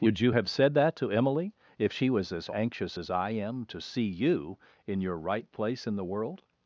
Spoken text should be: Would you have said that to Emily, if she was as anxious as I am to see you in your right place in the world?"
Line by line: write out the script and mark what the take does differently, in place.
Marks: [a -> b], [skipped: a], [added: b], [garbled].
Would you have said that to Emily, if she was as anxious as I am to see you in your right place in the world?"